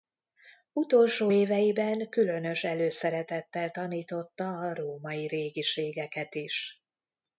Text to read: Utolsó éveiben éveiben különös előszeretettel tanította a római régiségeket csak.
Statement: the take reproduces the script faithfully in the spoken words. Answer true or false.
false